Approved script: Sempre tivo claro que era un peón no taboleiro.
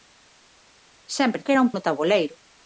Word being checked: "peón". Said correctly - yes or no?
no